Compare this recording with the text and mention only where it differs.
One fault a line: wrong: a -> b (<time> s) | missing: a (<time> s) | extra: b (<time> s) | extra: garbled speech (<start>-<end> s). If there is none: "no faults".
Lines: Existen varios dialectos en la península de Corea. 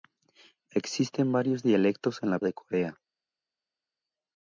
missing: península (2.4 s)